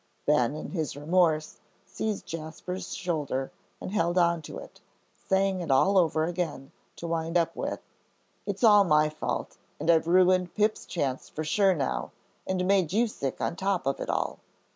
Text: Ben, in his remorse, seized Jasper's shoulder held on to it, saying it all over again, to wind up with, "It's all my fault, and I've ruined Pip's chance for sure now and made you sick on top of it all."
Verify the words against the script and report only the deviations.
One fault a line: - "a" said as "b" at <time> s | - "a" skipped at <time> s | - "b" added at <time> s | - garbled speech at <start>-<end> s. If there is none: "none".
- "and" added at 3.8 s